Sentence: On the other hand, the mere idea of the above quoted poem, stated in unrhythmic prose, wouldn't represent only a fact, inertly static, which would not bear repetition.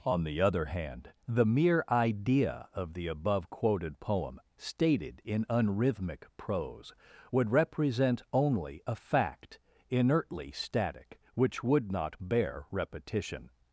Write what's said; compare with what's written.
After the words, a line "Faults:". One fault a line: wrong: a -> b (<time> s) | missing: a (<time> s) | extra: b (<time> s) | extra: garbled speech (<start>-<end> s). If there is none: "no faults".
On the other hand, the mere idea of the above quoted poem, stated in unrhythmic prose, would represent only a fact, inertly static, which would not bear repetition.
Faults:
wrong: wouldn't -> would (7.3 s)